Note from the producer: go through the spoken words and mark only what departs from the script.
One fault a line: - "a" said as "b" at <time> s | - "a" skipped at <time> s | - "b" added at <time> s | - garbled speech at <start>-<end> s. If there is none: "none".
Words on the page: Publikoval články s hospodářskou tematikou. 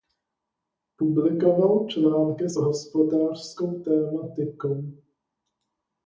none